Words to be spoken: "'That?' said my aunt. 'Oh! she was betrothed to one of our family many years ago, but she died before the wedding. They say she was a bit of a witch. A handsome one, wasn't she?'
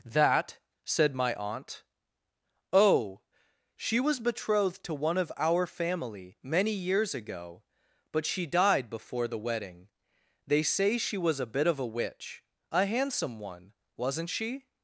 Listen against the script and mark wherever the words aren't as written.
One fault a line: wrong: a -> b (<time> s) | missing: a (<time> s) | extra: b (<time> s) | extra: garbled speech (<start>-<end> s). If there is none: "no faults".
no faults